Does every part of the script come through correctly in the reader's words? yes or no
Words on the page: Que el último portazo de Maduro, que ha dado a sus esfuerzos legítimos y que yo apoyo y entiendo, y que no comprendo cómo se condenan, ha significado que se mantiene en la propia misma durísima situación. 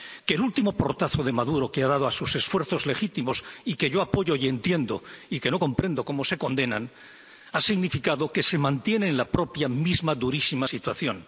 yes